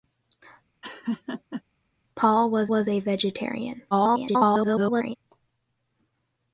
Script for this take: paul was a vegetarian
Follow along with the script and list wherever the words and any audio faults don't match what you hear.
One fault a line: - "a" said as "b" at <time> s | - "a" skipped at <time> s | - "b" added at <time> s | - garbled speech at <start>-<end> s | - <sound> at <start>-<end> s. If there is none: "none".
- laugh at 0.8-1.6 s
- "was" added at 2.7 s
- garbled speech at 3.9-5.2 s